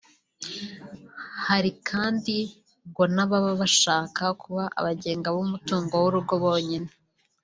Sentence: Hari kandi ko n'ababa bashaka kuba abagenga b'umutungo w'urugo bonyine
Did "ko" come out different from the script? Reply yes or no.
yes